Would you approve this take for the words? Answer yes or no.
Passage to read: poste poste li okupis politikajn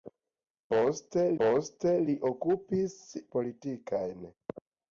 yes